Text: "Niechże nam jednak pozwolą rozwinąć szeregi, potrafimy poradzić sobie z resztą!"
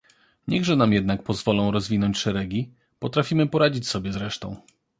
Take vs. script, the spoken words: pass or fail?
pass